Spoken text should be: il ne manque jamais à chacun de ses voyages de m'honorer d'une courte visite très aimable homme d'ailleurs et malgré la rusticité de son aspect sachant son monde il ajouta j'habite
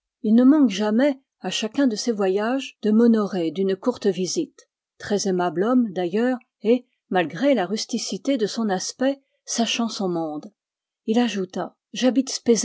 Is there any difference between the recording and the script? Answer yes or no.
no